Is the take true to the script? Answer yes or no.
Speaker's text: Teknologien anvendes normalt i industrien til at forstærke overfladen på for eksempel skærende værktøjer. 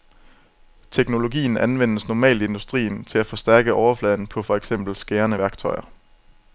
yes